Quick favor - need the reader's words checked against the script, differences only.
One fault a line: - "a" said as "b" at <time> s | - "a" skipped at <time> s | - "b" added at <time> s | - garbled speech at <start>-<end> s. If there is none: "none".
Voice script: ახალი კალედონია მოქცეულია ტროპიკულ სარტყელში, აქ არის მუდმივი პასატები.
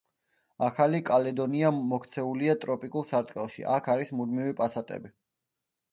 none